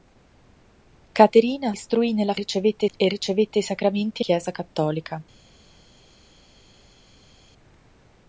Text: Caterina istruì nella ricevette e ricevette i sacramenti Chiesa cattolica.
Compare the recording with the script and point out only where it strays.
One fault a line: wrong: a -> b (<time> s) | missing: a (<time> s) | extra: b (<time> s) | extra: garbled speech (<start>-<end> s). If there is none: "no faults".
no faults